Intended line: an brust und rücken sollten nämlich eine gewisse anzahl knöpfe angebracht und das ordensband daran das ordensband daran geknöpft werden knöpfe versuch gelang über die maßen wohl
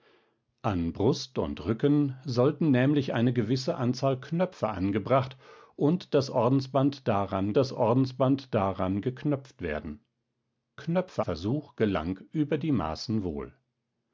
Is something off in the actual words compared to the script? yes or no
no